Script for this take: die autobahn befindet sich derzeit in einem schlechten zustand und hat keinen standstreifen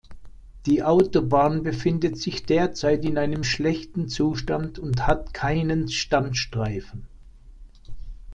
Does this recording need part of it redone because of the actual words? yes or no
no